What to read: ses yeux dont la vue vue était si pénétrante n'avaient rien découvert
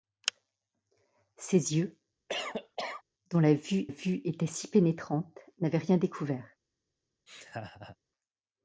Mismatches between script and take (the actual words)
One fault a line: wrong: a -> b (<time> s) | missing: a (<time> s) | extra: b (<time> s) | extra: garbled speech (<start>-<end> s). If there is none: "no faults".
no faults